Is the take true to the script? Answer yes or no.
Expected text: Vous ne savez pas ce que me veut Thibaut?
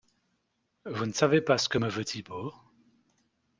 yes